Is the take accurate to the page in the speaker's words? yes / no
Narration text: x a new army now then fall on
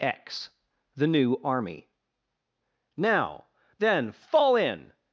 no